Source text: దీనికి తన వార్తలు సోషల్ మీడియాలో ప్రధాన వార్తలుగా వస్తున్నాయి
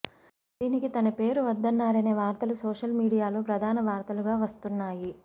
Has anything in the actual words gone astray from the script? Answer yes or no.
yes